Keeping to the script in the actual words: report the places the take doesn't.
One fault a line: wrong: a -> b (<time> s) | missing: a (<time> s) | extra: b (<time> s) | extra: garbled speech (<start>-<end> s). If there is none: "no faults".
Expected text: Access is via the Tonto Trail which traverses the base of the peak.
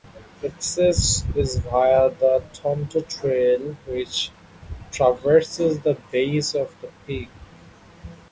no faults